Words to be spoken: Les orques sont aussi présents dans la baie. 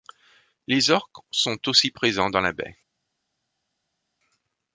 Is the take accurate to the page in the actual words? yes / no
yes